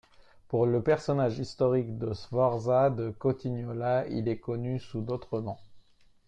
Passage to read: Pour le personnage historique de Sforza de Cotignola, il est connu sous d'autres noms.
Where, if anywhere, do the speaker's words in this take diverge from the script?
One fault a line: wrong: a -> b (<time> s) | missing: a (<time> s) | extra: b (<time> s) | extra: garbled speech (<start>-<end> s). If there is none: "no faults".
no faults